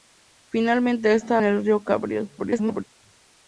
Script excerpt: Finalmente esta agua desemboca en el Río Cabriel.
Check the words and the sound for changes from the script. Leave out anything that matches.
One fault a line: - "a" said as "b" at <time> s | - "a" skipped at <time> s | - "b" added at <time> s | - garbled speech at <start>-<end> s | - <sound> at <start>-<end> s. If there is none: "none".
- "agua desemboca" skipped at 1.4 s
- garbled speech at 2.4-2.8 s